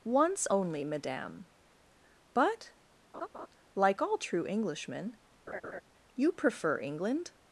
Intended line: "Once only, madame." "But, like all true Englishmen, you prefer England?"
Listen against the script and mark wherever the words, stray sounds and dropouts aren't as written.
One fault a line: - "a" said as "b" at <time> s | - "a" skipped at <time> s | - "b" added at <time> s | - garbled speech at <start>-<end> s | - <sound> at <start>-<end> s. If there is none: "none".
- laugh at 3.1-3.5 s
- laugh at 5.5-5.8 s